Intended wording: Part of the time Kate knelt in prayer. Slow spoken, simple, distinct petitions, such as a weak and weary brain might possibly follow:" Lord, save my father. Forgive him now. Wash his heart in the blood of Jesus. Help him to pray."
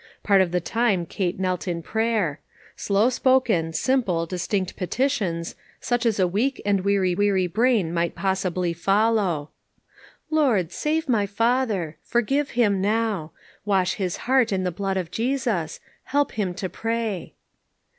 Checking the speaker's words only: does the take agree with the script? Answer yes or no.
no